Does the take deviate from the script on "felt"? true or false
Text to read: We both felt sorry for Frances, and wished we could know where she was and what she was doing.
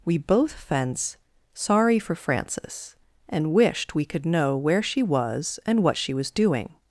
true